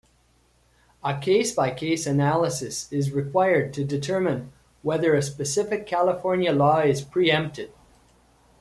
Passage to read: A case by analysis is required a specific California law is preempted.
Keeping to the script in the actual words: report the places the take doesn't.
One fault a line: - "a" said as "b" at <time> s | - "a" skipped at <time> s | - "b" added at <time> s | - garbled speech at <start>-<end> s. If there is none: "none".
- "case" added at 1.7 s
- "to determine whether" added at 3.7 s